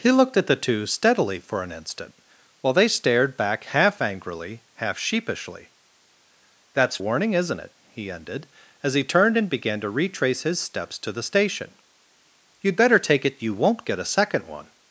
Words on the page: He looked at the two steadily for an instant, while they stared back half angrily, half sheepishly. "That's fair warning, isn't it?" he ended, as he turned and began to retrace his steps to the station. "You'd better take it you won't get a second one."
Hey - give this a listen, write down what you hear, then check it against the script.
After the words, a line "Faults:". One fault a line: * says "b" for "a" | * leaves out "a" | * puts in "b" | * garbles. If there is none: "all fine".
He looked at the two steadily for an instant, while they stared back half angrily, half sheepishly. "That's warning, isn't it?" he ended, as he turned and began to retrace his steps to the station. "You'd better take it you won't get a second one."
Faults:
* leaves out "fair"